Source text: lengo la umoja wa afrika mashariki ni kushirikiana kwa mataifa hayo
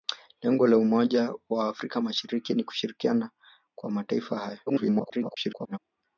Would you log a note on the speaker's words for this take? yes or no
yes